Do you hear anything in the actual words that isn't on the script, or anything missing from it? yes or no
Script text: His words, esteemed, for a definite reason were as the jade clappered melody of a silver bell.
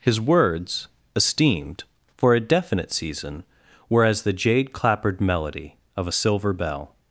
yes